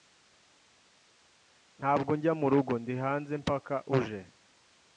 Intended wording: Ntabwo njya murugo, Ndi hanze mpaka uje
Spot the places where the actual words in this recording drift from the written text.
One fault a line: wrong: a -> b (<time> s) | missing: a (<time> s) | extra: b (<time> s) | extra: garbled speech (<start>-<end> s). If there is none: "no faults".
no faults